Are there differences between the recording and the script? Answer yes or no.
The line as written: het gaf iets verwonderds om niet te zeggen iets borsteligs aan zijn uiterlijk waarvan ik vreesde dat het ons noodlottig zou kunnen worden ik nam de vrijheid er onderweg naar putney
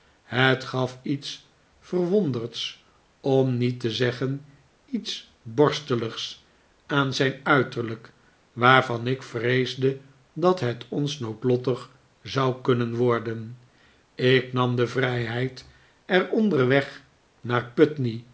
no